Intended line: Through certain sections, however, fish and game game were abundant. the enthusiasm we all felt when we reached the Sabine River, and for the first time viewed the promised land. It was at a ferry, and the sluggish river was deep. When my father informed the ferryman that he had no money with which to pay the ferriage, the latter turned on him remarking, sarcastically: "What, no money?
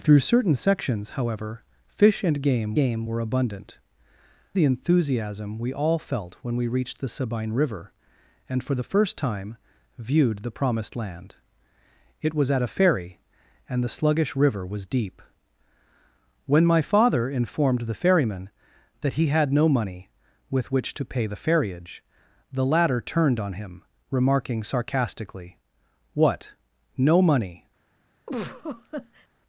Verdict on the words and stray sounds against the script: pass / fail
fail